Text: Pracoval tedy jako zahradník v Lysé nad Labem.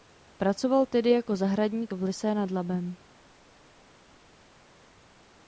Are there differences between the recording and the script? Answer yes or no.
no